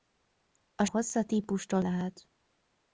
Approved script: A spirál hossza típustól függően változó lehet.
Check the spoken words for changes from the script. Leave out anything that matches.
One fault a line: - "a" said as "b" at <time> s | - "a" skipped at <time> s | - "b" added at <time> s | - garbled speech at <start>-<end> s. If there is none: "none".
- "spirál" skipped at 0.8 s
- "függően változó" skipped at 1.8 s